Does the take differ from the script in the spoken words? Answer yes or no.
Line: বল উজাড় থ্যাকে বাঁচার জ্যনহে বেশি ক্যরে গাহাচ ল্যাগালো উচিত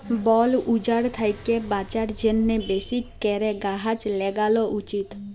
no